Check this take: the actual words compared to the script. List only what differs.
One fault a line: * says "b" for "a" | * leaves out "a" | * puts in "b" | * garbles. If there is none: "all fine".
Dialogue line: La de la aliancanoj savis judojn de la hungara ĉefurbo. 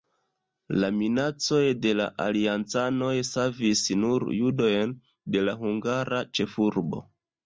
* puts in "minacoj"
* puts in "nur"